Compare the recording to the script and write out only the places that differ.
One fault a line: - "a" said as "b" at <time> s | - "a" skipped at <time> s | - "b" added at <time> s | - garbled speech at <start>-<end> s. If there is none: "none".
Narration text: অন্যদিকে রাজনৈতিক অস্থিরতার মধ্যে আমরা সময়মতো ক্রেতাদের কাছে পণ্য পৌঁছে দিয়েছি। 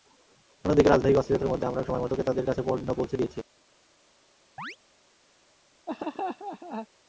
none